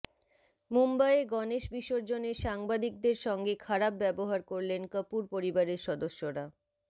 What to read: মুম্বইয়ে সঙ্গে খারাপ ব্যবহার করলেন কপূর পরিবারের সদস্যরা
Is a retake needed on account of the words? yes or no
yes